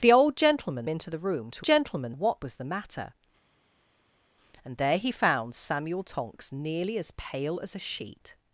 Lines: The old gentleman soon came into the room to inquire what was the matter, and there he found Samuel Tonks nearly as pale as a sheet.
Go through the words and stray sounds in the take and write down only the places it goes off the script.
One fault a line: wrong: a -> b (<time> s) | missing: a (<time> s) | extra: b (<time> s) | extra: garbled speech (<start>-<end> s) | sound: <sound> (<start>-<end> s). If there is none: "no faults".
missing: soon came (0.9 s)
wrong: inquire -> gentleman (1.6 s)